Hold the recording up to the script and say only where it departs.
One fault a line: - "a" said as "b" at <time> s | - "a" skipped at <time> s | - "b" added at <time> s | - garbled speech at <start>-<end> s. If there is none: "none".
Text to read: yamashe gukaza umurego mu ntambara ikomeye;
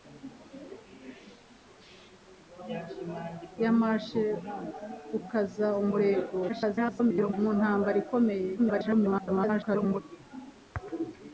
- garbled speech at 6.5-7.3 s
- garbled speech at 8.6-10.0 s